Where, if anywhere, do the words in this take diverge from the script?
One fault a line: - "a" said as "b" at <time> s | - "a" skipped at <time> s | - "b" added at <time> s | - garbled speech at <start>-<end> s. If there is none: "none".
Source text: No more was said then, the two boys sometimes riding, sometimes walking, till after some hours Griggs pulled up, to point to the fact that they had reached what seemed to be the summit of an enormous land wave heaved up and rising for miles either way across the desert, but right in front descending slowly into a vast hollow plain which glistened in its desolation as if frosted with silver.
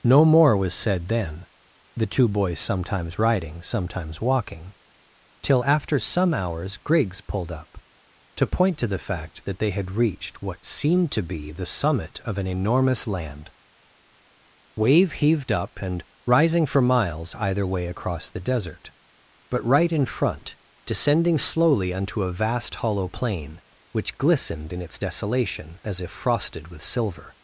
- "into" said as "unto" at 21.9 s